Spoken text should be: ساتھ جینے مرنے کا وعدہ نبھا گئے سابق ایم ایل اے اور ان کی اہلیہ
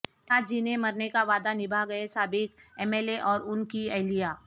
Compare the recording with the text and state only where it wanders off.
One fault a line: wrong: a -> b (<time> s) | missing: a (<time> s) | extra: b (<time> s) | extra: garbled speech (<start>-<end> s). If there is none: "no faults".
no faults